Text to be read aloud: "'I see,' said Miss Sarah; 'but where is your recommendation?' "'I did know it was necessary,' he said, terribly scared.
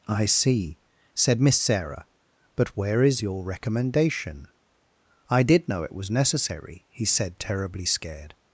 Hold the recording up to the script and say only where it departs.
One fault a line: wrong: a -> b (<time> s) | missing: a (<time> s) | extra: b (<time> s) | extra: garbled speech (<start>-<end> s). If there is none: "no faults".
no faults